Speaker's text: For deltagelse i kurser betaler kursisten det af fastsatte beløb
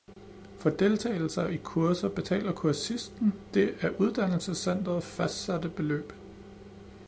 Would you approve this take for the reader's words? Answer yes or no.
no